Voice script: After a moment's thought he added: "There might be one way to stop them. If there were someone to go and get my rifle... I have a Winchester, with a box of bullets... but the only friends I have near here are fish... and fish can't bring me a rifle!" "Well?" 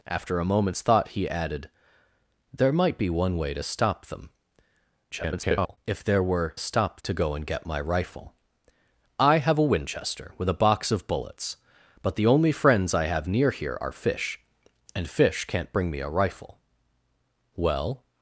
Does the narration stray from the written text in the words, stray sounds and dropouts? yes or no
yes